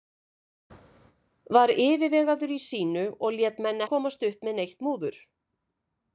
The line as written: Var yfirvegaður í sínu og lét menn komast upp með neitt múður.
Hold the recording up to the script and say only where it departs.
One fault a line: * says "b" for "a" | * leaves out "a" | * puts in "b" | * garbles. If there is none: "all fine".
all fine